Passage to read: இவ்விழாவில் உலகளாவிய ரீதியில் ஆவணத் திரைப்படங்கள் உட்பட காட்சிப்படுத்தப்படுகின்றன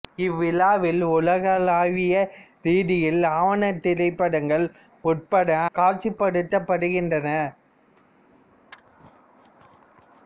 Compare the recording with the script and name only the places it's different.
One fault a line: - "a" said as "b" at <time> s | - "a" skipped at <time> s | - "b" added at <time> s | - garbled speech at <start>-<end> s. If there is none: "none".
none